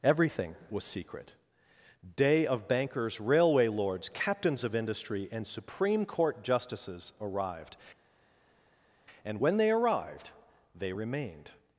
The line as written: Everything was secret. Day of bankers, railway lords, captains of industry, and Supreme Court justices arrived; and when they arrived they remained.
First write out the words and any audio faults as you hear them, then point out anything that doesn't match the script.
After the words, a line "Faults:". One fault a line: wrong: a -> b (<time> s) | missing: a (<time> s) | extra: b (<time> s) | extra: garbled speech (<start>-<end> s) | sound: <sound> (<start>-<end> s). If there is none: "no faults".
Everything was secret. Day of bankers, railway lords, captains of industry, and Supreme Court justices arrived; and when they arrived they remained.
Faults:
no faults